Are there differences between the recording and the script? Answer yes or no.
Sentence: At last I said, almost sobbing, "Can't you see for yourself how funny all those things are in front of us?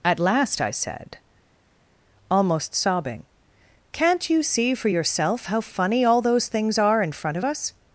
no